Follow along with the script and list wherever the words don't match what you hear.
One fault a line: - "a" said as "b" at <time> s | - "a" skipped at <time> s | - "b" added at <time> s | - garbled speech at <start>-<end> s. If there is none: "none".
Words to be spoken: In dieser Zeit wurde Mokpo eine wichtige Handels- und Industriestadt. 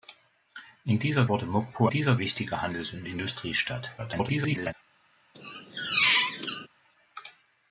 - "Zeit" skipped at 1.3 s
- "eine" said as "dieser" at 1.9 s
- garbled speech at 4.0-4.7 s